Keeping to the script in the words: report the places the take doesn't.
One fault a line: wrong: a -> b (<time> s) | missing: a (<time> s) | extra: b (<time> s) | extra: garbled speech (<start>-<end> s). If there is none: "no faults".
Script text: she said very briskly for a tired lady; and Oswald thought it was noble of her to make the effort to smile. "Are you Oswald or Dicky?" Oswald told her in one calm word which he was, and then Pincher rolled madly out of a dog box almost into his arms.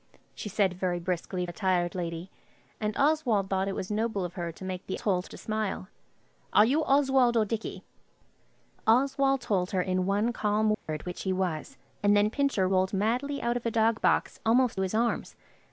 missing: for (1.4 s)
wrong: effort -> told (5.0 s)
missing: into (14.8 s)